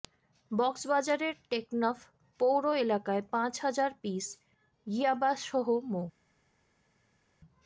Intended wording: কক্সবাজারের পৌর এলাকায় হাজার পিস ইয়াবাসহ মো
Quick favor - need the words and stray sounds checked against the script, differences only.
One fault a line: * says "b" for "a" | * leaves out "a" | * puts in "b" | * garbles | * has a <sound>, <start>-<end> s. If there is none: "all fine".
* puts in "টেকনাফ"
* puts in "পাঁচ"